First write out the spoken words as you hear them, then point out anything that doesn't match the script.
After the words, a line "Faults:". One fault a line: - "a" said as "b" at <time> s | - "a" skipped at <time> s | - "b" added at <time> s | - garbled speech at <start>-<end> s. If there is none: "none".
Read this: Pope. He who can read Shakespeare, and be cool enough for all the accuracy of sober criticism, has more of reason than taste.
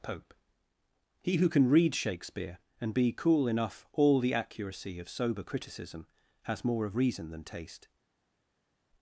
Pope. He who can read Shakespeare, and be cool enough all the accuracy of sober criticism, has more of reason than taste.
Faults:
- "for" skipped at 3.9 s